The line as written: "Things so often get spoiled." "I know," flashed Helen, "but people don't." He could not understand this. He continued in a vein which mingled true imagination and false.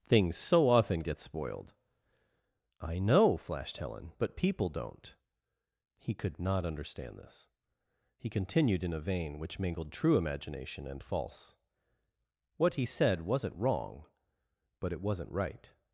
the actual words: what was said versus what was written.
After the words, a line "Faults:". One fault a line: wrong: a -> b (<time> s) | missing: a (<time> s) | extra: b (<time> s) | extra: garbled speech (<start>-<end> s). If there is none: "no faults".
"Things so often get spoiled." "I know," flashed Helen, "but people don't." He could not understand this. He continued in a vein which mingled true imagination and false. What he said wasn't wrong, but it wasn't right
Faults:
extra: What he said wasn't wrong but it wasn't right (12.6 s)